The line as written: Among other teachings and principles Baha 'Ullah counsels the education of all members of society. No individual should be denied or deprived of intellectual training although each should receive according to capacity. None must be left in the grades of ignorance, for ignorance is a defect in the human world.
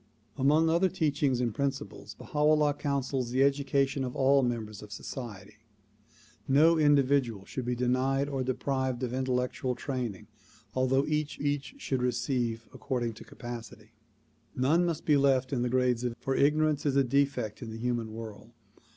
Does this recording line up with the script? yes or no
no